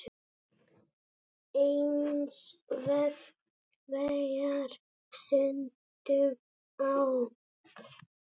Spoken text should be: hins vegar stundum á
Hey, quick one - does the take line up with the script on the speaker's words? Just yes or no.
yes